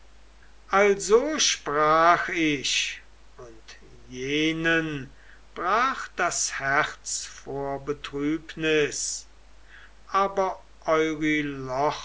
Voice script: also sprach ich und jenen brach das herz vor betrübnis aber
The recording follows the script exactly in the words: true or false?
true